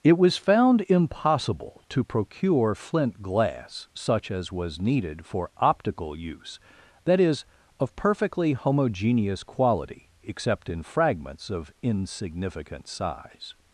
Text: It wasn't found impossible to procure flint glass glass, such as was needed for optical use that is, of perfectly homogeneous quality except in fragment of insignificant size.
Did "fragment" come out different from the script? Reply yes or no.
yes